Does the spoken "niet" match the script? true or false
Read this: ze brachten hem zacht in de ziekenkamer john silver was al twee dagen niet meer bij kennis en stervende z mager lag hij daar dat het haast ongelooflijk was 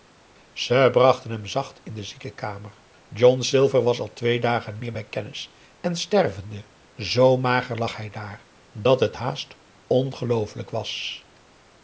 false